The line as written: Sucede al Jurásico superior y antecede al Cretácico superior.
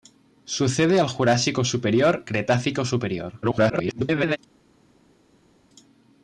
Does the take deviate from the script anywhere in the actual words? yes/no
yes